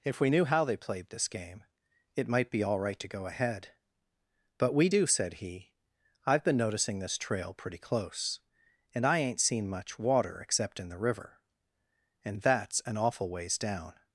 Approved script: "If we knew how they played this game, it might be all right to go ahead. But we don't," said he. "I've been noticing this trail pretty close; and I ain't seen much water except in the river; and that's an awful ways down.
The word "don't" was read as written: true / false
false